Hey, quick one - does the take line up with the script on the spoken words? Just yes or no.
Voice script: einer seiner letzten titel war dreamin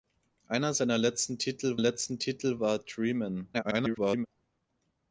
no